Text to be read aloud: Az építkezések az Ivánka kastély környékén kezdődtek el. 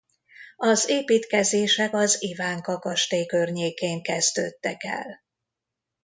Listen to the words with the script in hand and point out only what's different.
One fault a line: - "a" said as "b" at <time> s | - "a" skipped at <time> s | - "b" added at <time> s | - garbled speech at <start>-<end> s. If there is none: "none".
none